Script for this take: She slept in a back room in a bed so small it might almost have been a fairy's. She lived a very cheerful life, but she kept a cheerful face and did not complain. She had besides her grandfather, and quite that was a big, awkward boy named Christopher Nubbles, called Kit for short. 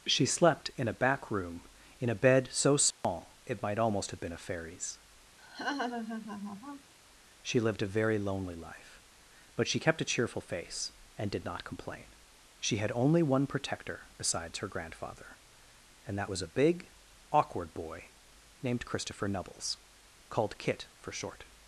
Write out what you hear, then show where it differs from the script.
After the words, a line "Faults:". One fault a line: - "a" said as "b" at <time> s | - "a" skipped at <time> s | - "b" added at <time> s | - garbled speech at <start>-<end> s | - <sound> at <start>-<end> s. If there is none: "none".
She slept in a back room in a bed so small it might almost have been a fairy's. She lived a very lonely life, but she kept a cheerful face and did not complain. She had only one protector besides her grandfather, and that was a big, awkward boy named Christopher Nubbles, called Kit for short.
Faults:
- dropout at 2.9-3.0 s
- laugh at 5.4-6.9 s
- "cheerful" said as "lonely" at 8.2 s
- "only one protector" added at 12.9 s
- "quite" skipped at 16.2 s